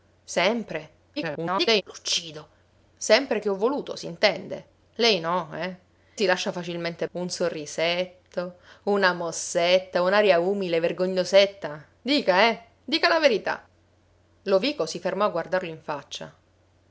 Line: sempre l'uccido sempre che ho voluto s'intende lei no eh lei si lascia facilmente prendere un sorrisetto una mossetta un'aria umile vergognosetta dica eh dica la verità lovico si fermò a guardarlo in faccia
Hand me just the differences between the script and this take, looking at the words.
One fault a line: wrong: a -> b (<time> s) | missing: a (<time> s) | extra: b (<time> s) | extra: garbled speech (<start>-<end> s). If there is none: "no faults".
extra: garbled speech (1.2-1.8 s)
missing: lei (5.8 s)
missing: prendere (7.1 s)